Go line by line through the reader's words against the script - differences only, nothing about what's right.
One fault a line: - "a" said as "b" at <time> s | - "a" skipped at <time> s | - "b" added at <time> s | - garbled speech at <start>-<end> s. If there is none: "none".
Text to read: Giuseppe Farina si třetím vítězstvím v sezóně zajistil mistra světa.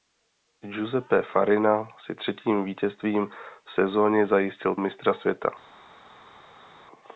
none